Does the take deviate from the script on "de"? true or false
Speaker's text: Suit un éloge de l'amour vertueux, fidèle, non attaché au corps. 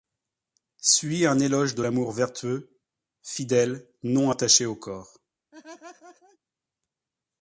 false